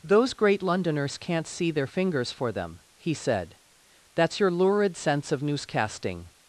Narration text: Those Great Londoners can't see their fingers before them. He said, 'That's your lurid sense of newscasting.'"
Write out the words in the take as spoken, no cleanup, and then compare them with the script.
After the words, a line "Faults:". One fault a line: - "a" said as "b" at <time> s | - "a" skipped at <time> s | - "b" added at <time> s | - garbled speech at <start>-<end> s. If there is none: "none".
Those Great Londoners can't see their fingers for them. He said, 'That's your lurid sense of newscasting.'"
Faults:
- "before" said as "for" at 2.3 s